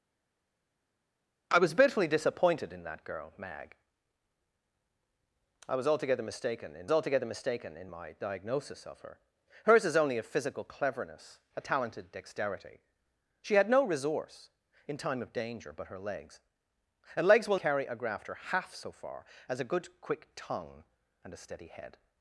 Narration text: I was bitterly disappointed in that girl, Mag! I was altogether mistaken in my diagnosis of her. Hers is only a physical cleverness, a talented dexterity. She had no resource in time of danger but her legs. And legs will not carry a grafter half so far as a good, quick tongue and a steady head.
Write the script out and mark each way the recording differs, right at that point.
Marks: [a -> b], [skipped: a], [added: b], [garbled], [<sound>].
I was bitterly disappointed in that girl, Mag! I was altogether mistaken in [added: altogether mistaken in] my diagnosis of her. Hers is only a physical cleverness, a talented dexterity. She had no resource in time of danger but her legs. And legs will [skipped: not] carry a grafter half so far as a good, quick tongue and a steady head.